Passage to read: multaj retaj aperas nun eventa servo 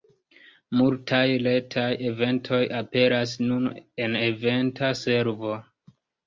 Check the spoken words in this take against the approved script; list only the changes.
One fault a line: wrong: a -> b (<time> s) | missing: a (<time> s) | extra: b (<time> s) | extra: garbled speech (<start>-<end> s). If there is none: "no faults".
extra: eventoj (2.1 s)
extra: en (4.1 s)